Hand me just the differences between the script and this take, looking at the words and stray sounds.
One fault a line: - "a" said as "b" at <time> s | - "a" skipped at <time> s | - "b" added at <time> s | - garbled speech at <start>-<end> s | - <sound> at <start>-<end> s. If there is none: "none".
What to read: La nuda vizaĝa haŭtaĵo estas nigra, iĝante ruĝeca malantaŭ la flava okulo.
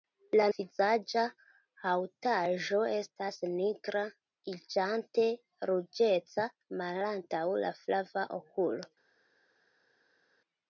- "nuda" skipped at 0.5 s